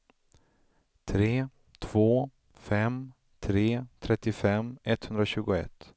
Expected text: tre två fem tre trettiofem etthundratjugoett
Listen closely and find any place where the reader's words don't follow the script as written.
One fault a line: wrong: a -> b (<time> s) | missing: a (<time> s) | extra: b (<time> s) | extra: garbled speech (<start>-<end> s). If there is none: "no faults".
no faults